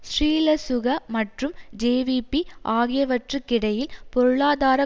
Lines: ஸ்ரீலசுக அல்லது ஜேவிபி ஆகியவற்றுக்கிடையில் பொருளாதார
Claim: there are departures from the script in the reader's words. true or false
true